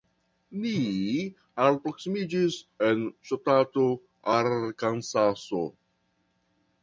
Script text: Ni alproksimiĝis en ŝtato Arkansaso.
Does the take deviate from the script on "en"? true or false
false